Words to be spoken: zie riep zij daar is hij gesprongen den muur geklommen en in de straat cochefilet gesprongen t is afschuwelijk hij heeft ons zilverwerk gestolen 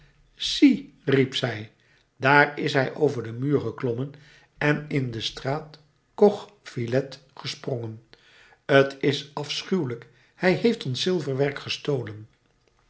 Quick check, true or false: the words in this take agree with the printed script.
false